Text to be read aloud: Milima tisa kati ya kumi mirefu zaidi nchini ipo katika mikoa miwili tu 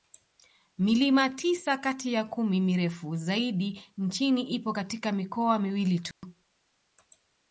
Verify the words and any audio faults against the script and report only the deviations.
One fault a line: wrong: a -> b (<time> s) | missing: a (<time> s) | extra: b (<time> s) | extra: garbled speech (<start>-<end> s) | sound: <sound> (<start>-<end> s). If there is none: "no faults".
sound: dropout (6.1-6.2 s)